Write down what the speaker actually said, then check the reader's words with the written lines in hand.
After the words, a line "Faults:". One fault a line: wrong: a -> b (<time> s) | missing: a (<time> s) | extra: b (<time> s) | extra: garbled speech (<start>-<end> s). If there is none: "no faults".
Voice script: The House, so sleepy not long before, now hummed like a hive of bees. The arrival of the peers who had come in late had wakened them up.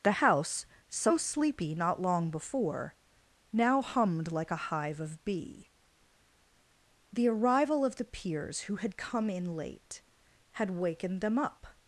The House, so sleepy not long before, now hummed like a hive of bee. The arrival of the peers who had come in late had wakened them up.
Faults:
wrong: bees -> bee (5.2 s)